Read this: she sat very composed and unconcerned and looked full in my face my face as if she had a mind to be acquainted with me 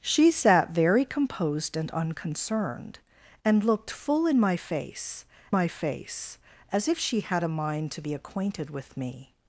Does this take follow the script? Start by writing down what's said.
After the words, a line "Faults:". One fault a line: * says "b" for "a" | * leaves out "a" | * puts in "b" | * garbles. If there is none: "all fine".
she sat very composed and unconcerned and looked full in my face my face as if she had a mind to be acquainted with me
Faults:
all fine